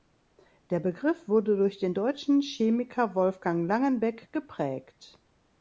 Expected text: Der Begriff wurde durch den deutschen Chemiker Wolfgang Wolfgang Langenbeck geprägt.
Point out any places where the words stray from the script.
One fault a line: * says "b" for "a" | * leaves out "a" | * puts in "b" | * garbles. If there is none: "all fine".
* leaves out "Wolfgang"